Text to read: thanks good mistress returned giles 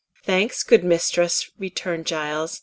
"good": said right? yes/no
yes